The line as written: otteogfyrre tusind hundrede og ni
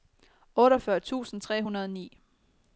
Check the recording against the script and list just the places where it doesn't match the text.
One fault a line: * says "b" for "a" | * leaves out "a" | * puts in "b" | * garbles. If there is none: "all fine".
* puts in "tre"